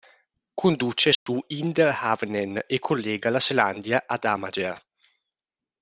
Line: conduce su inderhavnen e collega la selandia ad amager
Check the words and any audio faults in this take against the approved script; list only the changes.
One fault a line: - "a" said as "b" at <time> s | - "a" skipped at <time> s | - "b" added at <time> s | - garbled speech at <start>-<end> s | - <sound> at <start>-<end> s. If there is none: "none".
- dropout at 1.1-1.3 s